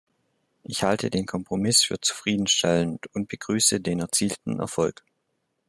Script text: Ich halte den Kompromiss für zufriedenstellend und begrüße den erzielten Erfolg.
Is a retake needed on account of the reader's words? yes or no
no